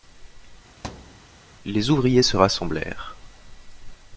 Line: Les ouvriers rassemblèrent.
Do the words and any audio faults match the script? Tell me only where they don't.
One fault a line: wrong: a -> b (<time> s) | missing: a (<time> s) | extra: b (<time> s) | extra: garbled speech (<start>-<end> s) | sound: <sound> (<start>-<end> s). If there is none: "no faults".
sound: thud (0.8-1.3 s)
extra: se (2.2 s)